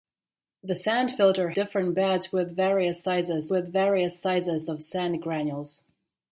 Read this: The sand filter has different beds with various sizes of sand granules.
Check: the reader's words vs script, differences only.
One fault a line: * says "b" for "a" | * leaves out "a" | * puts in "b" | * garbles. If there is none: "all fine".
* leaves out "has"
* puts in "with various sizes"